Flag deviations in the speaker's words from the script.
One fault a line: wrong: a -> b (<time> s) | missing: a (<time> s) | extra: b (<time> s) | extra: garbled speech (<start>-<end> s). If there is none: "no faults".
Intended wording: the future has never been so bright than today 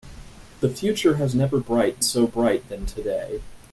wrong: been -> bright (1.6 s)